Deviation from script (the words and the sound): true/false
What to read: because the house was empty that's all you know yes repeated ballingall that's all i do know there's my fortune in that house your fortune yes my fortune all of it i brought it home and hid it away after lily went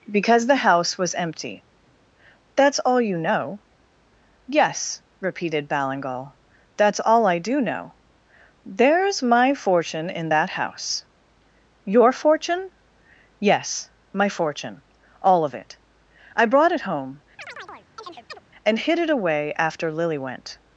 true